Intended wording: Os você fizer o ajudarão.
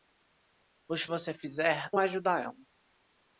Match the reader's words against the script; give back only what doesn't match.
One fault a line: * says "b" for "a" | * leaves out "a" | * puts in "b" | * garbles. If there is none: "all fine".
all fine